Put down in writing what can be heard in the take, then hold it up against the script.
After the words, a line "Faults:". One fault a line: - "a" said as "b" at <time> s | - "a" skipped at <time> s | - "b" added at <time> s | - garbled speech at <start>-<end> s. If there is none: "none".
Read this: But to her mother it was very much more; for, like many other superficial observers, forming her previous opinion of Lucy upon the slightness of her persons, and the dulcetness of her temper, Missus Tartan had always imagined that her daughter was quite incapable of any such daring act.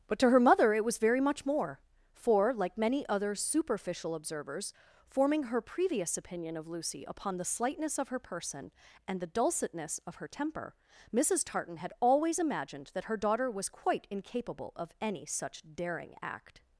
But to her mother it was very much more; for, like many other superficial observers, forming her previous opinion of Lucy upon the slightness of her person, and the dulcetness of her temper, Missus Tartan had always imagined that her daughter was quite incapable of any such daring act.
Faults:
- "persons" said as "person" at 8.2 s